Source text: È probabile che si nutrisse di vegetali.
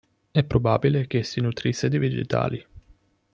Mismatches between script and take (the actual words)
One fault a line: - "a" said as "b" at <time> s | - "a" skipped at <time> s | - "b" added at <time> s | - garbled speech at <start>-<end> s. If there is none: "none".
none